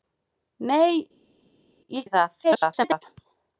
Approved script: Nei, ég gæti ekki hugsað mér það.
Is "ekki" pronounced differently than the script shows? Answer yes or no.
yes